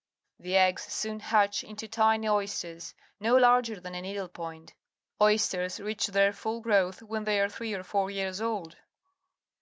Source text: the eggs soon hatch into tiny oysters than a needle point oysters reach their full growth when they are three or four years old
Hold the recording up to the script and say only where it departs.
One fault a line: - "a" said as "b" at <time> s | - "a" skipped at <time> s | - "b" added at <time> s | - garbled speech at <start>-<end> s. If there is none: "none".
- "no larger" added at 3.2 s